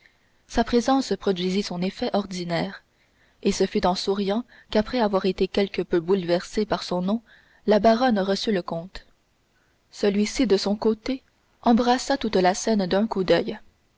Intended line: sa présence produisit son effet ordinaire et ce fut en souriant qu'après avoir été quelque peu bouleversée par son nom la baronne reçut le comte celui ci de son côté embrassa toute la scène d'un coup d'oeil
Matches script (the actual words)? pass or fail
pass